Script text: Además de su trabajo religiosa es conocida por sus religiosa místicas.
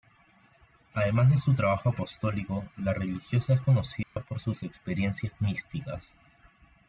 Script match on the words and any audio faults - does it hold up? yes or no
no